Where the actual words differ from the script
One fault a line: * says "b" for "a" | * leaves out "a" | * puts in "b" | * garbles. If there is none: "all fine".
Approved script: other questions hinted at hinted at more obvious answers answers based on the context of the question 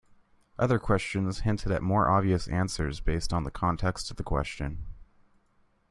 * leaves out "hinted at"
* leaves out "answers"